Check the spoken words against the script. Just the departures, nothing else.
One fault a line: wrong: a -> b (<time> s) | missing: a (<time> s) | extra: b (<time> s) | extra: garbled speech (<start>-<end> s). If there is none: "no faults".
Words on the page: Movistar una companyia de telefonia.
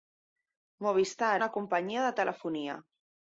no faults